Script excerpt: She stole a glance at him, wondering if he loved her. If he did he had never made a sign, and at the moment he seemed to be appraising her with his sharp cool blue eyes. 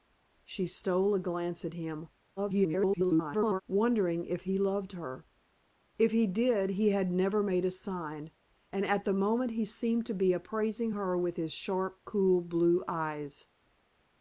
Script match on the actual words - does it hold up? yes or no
no